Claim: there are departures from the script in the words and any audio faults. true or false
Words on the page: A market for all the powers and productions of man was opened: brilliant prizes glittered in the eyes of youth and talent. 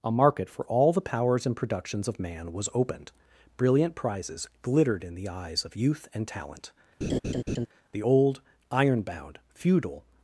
true